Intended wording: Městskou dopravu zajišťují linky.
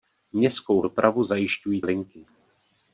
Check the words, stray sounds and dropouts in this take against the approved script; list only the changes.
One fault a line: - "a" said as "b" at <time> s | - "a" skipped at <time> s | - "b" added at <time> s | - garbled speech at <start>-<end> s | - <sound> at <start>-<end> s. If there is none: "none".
none